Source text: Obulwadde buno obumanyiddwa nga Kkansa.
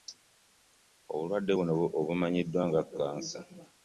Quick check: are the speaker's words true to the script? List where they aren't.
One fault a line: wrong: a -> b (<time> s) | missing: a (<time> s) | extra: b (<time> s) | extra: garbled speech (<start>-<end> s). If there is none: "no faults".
no faults